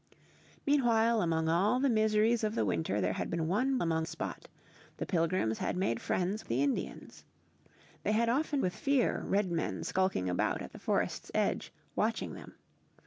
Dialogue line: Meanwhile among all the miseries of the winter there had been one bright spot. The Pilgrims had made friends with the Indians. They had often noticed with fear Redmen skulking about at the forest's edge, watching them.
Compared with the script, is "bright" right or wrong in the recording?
wrong